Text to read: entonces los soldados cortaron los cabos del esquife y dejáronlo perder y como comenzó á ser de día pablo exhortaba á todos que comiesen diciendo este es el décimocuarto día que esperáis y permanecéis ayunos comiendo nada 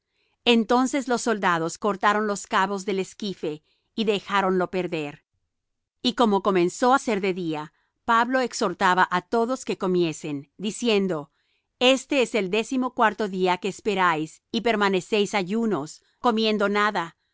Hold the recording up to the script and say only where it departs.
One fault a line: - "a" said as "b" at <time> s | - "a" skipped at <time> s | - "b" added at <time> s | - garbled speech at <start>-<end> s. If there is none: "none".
none